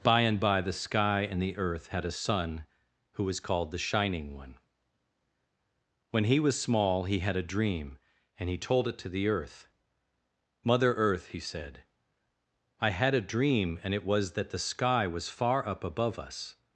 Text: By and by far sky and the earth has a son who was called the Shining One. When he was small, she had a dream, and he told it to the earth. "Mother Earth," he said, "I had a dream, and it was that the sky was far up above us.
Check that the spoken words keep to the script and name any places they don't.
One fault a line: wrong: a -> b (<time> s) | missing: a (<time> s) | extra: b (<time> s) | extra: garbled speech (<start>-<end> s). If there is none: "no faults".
wrong: far -> the (0.6 s)
wrong: has -> had (1.9 s)
wrong: she -> he (7.0 s)